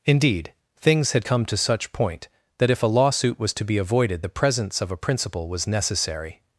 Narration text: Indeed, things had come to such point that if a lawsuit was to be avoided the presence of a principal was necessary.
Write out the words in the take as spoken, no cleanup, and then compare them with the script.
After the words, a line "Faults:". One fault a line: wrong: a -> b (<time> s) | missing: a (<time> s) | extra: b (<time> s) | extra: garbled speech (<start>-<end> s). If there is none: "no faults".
Indeed, things had come to such point that if a lawsuit was to be avoided the presence of a principal was necessary.
Faults:
no faults